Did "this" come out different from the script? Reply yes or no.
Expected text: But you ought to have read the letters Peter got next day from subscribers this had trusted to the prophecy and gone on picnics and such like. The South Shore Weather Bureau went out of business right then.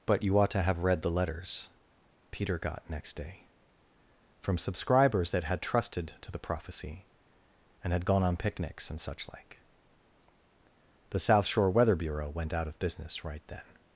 yes